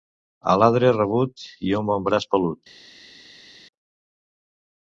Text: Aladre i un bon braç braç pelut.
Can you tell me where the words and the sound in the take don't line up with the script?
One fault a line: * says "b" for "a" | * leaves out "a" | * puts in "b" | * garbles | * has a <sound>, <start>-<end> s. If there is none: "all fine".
* puts in "rabut"
* leaves out "braç"